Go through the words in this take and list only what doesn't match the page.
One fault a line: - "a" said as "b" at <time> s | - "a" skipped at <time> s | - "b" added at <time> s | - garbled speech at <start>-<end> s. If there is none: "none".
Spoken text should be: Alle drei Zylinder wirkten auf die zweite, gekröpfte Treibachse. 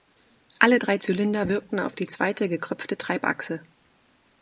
none